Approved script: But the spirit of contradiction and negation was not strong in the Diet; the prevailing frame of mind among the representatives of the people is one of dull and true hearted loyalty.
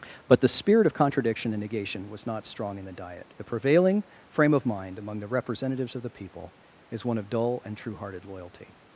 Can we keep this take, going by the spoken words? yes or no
yes